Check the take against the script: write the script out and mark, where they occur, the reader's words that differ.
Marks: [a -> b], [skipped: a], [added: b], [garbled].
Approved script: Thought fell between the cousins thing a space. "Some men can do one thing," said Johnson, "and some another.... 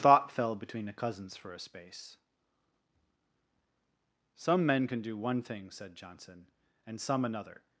Thought fell between the cousins [thing -> for] a space. "Some men can do one thing," said Johnson, "and some another....